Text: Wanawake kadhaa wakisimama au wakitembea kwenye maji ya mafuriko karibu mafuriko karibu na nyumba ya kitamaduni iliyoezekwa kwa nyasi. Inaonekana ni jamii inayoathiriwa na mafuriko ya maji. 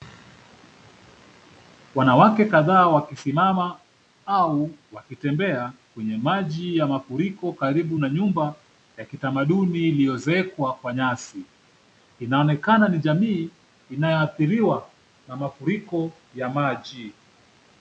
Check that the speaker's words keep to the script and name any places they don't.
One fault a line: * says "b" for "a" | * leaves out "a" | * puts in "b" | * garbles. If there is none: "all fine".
* leaves out "mafuriko karibu"